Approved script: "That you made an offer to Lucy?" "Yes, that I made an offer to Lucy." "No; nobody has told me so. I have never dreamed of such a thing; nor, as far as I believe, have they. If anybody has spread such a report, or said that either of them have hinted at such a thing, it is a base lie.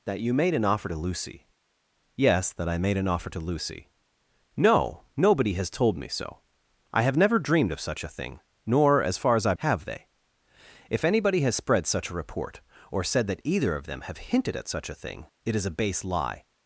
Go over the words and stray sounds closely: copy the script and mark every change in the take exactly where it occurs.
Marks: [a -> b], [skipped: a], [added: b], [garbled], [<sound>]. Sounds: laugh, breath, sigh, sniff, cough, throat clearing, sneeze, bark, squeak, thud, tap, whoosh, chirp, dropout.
"That you made an offer to Lucy?" "Yes, that I made an offer to Lucy." "No; nobody has told me so. I have never dreamed of such a thing; nor, as far as I [skipped: believe,] have they. If anybody has spread such a report, or said that either of them have hinted at such a thing, it is a base lie.